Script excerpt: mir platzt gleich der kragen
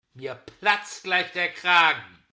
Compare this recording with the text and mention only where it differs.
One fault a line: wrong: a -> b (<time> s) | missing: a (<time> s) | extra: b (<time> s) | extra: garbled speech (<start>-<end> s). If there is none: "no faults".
no faults